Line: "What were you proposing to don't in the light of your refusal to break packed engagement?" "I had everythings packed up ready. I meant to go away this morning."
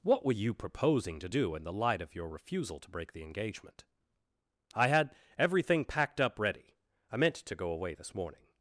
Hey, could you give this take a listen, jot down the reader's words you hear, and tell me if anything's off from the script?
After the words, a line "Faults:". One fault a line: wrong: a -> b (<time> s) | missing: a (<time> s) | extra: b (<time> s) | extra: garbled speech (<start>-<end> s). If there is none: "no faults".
"What were you proposing to do in the light of your refusal to break the engagement?" "I had everything packed up ready. I meant to go away this morning."
Faults:
wrong: don't -> do (1.3 s)
wrong: packed -> the (3.1 s)
wrong: everythings -> everything (5.4 s)